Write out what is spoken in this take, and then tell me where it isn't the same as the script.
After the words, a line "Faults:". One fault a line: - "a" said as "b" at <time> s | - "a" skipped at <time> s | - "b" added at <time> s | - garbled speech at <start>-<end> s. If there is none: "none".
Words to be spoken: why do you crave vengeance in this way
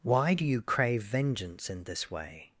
why do you crave vengeance in this way
Faults:
none